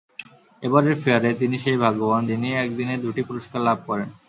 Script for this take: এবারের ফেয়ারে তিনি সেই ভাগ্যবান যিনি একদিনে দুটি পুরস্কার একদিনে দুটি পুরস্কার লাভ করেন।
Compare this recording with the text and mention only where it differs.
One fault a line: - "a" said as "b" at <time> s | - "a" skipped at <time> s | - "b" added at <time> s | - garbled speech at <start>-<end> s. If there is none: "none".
- "একদিনে দুটি পুরস্কার" skipped at 3.6 s